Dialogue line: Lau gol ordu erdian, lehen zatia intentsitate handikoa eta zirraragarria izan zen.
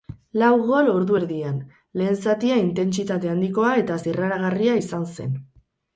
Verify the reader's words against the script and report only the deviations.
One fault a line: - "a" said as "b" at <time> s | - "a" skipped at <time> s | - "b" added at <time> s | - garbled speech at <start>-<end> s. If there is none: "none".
none